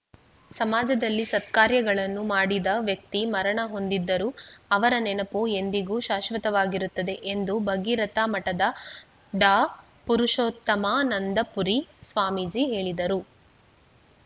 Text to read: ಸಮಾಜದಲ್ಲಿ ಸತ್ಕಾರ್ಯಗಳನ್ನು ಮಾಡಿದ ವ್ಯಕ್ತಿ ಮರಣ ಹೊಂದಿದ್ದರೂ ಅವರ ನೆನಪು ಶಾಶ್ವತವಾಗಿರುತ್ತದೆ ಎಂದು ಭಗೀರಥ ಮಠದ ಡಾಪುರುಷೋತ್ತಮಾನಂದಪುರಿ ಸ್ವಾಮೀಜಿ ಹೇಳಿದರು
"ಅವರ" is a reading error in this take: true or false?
false